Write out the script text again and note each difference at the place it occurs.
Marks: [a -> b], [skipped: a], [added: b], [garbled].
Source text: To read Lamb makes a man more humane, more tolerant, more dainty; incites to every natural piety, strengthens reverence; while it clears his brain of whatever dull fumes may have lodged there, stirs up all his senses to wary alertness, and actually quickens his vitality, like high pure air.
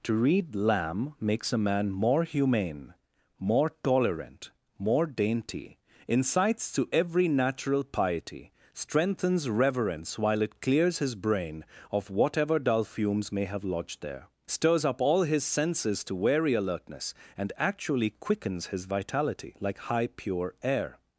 To read Lamb makes a man more humane, more tolerant, more dainty; incites to every natural piety, strengthens reverence; while it clears his brain of whatever dull fumes may have lodged there, stirs up all his senses to wary alertness, and actually quickens his vitality, like high pure air.